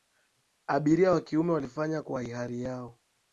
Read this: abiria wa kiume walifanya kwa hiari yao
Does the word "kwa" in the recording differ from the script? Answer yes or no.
no